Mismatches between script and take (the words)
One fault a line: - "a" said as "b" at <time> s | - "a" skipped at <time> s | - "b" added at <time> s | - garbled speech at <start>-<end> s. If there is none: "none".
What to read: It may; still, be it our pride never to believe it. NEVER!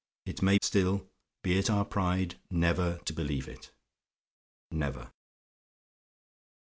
none